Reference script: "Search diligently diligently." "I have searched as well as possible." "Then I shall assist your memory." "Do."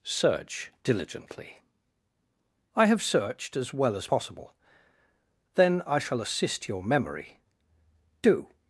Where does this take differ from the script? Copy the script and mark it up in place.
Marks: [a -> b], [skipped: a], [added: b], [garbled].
"Search diligently [skipped: diligently."] "I have searched as well as possible." "Then I shall assist your memory." "Do."